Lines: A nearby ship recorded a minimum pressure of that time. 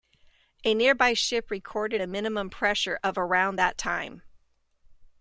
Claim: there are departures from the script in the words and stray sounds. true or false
true